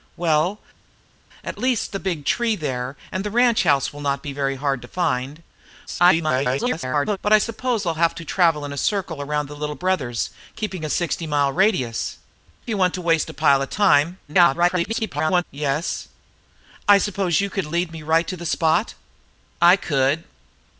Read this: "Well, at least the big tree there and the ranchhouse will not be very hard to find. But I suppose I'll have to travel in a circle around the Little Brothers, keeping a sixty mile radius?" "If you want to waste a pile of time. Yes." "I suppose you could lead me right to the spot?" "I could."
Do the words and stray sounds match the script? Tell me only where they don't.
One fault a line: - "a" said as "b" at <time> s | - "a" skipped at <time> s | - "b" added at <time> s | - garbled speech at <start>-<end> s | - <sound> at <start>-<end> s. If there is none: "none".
- garbled speech at 5.9-7.2 s
- "If" skipped at 12.2 s
- garbled speech at 14.3-15.4 s